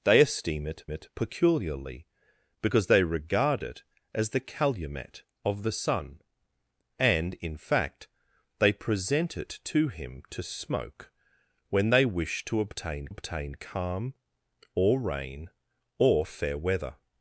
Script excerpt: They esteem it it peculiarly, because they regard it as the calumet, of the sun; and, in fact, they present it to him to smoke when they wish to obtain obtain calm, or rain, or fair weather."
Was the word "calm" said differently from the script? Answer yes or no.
no